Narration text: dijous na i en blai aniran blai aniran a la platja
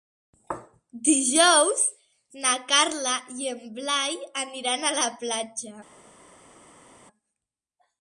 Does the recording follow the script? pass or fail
fail